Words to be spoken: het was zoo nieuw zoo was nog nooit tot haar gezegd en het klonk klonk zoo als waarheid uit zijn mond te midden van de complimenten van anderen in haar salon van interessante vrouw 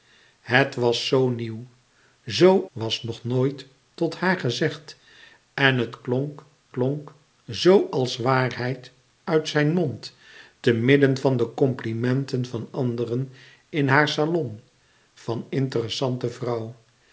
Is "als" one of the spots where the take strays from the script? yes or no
no